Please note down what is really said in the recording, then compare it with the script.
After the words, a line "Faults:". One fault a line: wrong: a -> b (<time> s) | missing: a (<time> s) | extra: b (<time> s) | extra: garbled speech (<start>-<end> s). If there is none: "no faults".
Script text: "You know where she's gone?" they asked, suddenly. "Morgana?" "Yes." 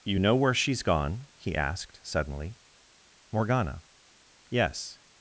"You know where she's gone?" he asked, suddenly. "Morgana?" "Yes."
Faults:
wrong: they -> he (1.4 s)